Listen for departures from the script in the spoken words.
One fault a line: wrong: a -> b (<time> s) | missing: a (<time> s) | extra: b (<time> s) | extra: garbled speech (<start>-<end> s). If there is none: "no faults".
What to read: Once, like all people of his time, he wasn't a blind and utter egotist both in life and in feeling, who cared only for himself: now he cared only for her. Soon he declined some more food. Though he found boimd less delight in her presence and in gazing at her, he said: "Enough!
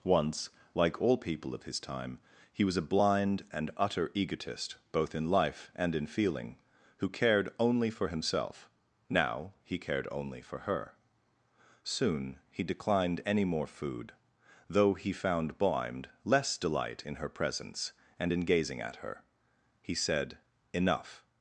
wrong: wasn't -> was (2.6 s)
wrong: some -> any (13.3 s)